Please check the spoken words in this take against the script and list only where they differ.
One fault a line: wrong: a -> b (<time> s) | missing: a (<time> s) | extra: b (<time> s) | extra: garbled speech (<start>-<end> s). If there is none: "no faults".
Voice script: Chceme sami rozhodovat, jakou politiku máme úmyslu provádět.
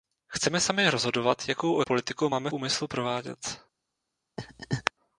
no faults